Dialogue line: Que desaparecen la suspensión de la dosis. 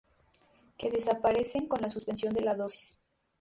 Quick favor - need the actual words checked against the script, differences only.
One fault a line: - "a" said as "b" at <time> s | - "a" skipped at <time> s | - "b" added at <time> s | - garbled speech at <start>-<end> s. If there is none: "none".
- "con" added at 1.7 s